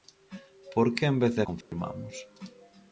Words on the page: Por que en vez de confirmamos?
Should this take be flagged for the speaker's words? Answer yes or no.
no